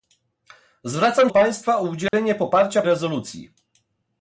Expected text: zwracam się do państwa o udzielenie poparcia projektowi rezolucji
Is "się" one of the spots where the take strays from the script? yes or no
yes